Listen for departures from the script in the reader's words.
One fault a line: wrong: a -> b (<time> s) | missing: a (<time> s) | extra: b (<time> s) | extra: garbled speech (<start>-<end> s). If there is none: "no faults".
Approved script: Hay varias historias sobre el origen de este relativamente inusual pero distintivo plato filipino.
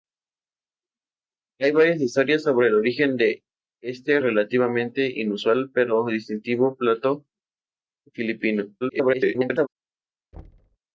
extra: garbled speech (8.8-9.7 s)